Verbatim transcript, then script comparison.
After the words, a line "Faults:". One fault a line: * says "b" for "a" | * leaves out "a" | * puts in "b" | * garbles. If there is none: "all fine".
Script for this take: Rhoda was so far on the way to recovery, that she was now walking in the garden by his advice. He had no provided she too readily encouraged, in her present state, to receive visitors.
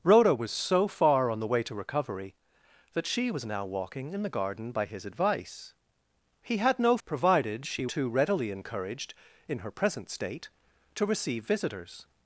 Rhoda was so far on the way to recovery, that she was now walking in the garden by his advice. He had no provided she too readily encouraged, in her present state, to receive visitors.
Faults:
all fine